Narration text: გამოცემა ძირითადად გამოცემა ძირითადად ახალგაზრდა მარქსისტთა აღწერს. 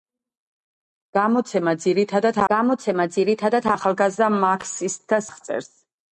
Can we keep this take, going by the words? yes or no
yes